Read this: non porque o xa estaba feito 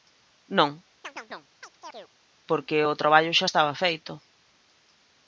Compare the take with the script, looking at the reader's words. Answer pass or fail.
fail